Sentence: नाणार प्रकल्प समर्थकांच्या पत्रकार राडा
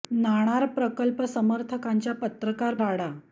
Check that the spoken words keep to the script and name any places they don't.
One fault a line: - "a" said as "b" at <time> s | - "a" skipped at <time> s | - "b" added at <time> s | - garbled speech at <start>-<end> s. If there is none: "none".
none